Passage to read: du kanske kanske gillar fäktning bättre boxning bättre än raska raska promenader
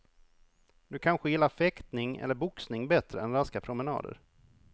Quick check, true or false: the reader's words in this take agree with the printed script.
false